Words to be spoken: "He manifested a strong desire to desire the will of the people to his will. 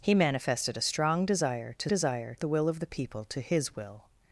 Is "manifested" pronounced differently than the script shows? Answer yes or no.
no